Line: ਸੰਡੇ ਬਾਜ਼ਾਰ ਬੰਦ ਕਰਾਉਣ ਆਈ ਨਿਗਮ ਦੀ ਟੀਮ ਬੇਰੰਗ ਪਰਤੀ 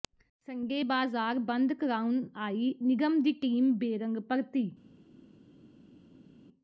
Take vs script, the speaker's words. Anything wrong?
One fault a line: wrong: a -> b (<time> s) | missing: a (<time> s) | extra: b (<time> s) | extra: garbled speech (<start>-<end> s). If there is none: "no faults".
no faults